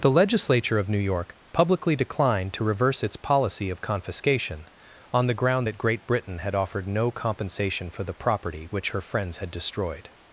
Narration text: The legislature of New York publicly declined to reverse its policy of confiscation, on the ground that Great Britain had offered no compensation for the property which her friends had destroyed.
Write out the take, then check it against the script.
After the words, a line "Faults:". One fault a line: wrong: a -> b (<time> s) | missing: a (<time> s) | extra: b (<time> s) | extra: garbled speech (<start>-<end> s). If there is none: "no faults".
The legislature of New York publicly declined to reverse its policy of confiscation, on the ground that Great Britain had offered no compensation for the property which her friends had destroyed.
Faults:
no faults